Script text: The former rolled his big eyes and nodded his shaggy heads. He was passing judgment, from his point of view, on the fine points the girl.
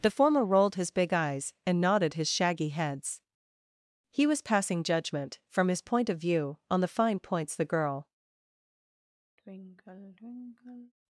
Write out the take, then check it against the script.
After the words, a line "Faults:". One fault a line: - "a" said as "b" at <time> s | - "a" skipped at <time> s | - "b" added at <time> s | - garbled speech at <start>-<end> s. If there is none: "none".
The former rolled his big eyes and nodded his shaggy heads. He was passing judgment, from his point of view, on the fine points the girl.
Faults:
none